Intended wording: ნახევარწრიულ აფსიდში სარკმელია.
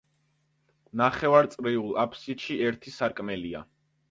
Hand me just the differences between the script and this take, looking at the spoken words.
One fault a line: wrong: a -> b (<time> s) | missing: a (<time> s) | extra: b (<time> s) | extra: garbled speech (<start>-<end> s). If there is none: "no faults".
extra: ერთი (2.7 s)